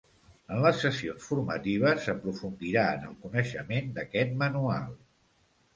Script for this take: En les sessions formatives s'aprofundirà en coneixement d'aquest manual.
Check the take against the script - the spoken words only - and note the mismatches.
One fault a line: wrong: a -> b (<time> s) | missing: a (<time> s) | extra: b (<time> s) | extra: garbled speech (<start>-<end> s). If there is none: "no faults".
extra: el (3.1 s)